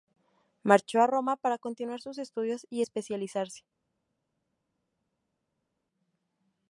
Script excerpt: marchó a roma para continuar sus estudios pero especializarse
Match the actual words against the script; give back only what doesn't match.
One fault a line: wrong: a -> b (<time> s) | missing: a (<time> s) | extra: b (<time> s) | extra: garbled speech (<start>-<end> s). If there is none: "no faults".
wrong: pero -> y (2.7 s)